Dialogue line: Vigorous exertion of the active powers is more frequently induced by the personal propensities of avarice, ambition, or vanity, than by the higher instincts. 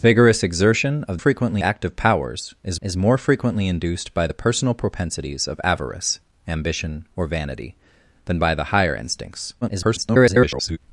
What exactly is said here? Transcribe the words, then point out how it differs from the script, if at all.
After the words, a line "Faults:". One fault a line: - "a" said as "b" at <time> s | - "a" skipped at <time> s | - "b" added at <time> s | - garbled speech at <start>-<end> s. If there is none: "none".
Vigorous exertion of frequently active powers is is more frequently induced by the personal propensities of avarice, ambition, or vanity, than by the higher instincts. [garbled]
Faults:
- "the" said as "frequently" at 1.2 s
- "is" added at 2.8 s
- garbled speech at 9.6-10.8 s